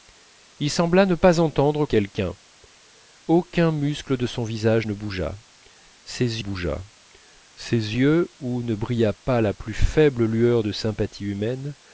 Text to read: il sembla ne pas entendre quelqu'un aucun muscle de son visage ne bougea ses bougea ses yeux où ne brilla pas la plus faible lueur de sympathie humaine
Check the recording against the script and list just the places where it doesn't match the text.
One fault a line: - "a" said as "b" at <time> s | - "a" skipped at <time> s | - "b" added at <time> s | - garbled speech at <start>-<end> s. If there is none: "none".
none